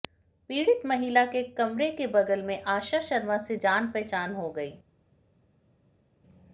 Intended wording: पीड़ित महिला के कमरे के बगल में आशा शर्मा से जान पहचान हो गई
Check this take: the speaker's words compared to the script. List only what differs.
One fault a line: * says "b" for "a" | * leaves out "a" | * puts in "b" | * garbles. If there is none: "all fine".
all fine